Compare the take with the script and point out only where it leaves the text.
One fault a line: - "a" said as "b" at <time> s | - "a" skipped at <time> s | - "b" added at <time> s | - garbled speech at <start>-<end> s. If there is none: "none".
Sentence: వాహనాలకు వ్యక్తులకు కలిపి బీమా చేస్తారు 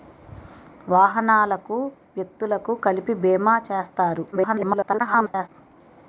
- garbled speech at 4.3-5.5 s